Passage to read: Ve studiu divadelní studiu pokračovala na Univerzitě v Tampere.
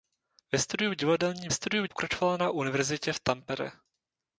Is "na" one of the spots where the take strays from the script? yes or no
no